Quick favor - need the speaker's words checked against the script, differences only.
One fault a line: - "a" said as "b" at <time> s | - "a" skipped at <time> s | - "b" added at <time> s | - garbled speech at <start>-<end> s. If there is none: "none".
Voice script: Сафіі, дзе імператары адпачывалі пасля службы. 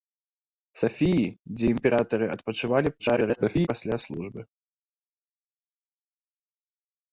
- garbled speech at 3.0-3.7 s